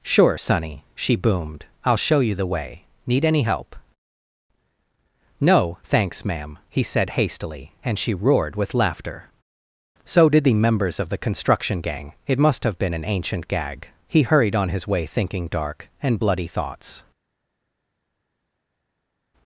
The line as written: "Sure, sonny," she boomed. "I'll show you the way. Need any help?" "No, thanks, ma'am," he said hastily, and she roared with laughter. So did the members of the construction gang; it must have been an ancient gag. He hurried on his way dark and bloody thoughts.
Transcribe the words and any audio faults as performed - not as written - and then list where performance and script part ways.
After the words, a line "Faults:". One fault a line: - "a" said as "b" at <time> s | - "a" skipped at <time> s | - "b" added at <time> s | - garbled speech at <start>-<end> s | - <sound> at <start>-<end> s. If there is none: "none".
"Sure, sonny," she boomed. "I'll show you the way. Need any help?" "No, thanks, ma'am," he said hastily, and she roared with laughter. So did the members of the construction gang; it must have been an ancient gag. He hurried on his way thinking dark and bloody thoughts.
Faults:
- "thinking" added at 15.1 s